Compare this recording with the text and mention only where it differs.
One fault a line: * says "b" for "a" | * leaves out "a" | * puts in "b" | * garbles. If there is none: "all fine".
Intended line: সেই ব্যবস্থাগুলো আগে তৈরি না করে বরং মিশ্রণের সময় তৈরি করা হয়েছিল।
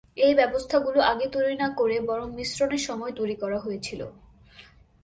* says "এই" for "সেই"